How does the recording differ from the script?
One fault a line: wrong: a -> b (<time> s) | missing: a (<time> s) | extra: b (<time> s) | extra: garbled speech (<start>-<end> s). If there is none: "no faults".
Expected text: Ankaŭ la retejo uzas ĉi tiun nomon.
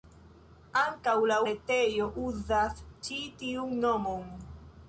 no faults